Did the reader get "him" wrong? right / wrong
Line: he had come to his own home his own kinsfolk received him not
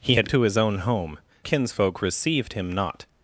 right